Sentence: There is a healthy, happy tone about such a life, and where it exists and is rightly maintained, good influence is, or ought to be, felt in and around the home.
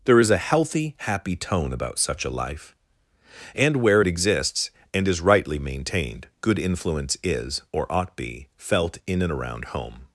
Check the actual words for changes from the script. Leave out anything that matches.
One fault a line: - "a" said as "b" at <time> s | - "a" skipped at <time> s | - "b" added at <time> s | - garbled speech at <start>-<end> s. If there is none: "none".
- "to" skipped at 8.1 s
- "the" skipped at 9.7 s